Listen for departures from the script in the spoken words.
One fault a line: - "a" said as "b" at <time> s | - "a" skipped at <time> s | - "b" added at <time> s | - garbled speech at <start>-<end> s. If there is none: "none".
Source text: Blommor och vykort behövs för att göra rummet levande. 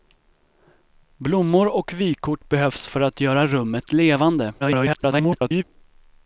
- garbled speech at 4.6-5.6 s